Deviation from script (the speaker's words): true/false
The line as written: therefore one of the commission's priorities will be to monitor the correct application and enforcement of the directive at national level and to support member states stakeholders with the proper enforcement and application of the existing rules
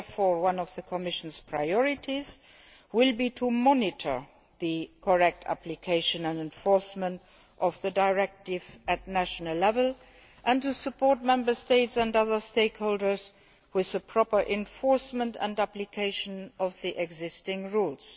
true